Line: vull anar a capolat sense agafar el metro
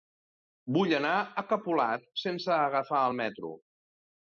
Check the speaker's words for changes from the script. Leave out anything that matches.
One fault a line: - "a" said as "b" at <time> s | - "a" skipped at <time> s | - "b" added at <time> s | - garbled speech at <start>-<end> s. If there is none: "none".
none